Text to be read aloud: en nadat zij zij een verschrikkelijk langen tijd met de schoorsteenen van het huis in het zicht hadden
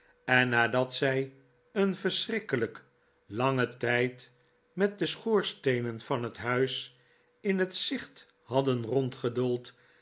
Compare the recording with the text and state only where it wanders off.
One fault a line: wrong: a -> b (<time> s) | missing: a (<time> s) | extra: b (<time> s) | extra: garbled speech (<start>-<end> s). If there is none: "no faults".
missing: zij (1.3 s)